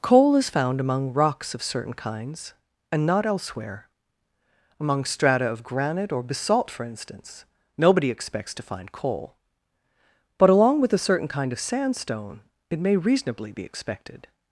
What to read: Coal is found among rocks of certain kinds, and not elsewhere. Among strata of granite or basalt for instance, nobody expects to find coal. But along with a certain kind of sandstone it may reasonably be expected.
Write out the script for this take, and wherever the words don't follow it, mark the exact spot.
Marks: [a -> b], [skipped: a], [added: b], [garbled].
Coal is found among rocks of certain kinds, and not elsewhere. Among strata of granite or basalt for instance, nobody expects to find coal. But along with a certain kind of sandstone it may reasonably be expected.